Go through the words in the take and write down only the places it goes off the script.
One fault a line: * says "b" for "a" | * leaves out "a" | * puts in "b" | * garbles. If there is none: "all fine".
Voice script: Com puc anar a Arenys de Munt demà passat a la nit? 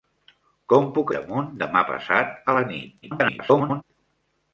* leaves out "anar a Arenys"
* garbles